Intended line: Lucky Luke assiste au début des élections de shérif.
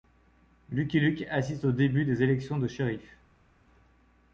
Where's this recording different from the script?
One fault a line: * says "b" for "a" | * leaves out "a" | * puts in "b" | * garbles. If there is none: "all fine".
all fine